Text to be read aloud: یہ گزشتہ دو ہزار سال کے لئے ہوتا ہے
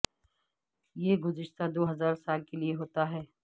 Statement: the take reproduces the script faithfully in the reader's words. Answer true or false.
true